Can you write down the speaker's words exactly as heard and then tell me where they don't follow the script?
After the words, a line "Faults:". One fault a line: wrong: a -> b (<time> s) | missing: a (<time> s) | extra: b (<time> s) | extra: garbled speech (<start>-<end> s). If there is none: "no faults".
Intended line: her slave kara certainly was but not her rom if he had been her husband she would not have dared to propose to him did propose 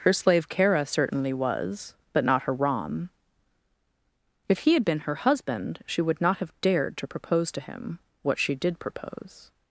her slave kara certainly was but not her rom if he had been her husband she would not have dared to propose to him what she did propose
Faults:
extra: what she (8.2 s)